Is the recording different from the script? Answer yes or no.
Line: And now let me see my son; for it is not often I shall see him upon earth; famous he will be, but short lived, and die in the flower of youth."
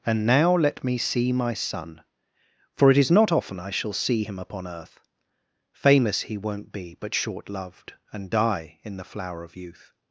yes